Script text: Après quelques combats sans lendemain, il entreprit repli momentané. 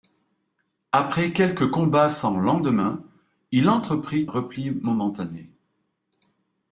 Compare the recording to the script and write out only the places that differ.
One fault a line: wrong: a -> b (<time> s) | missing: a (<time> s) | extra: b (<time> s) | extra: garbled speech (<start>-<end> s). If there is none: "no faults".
no faults